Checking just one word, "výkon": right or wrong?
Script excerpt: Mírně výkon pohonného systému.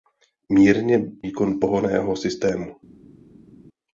right